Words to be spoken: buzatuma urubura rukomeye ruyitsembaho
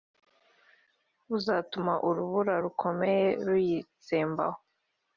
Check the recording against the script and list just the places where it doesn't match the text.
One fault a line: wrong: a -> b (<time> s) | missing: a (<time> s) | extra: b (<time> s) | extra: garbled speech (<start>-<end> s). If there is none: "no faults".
no faults